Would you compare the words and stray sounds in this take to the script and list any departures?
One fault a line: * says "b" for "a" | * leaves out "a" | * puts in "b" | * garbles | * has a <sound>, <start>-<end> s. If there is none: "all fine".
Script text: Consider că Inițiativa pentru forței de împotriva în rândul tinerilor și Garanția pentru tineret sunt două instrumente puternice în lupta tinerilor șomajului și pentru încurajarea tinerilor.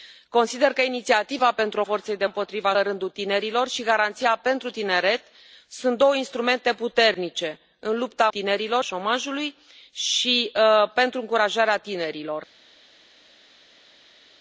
all fine